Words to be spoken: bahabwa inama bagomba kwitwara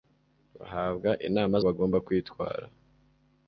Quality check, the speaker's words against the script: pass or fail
pass